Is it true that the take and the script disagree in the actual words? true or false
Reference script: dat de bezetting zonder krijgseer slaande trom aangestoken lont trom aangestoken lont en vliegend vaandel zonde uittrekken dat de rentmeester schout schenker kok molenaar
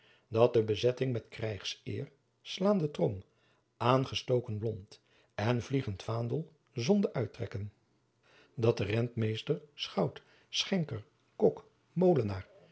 true